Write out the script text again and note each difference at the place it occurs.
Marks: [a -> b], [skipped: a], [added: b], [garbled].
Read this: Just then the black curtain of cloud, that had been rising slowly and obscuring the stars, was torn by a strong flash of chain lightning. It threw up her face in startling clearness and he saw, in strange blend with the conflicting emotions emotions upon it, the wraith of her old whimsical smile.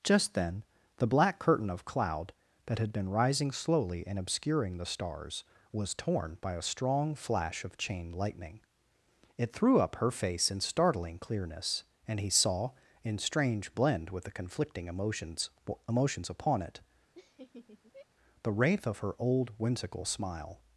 Just then the black curtain of cloud, that had been rising slowly and obscuring the stars, was torn by a strong flash of chain lightning. It threw up her face in startling clearness and he saw, in strange blend with the conflicting emotions emotions upon it, the wraith of her old whimsical smile.